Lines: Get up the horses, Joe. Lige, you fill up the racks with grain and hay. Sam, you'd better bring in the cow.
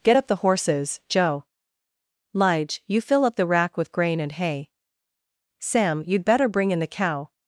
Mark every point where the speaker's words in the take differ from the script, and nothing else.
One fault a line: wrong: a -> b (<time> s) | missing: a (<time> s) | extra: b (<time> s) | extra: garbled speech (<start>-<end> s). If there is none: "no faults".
wrong: racks -> rack (3.4 s)